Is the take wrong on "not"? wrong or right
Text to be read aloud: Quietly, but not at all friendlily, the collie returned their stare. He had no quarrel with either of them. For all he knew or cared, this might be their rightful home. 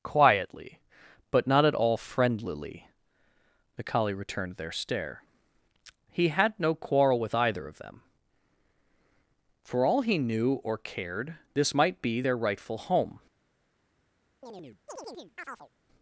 right